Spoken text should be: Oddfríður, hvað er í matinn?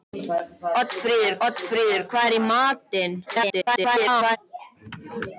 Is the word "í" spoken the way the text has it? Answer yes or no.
yes